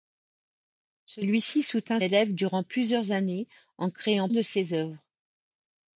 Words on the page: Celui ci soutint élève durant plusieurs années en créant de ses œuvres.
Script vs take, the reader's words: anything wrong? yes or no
no